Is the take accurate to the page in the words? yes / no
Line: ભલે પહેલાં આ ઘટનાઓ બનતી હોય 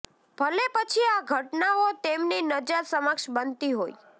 no